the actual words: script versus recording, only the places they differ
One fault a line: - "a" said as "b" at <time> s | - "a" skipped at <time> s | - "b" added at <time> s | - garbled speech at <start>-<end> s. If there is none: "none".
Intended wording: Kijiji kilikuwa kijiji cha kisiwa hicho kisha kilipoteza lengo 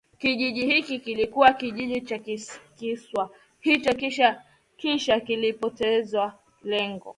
- "hiki" added at 0.6 s